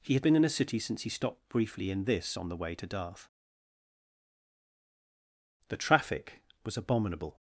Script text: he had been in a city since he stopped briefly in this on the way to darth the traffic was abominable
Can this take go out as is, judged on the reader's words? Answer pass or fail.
pass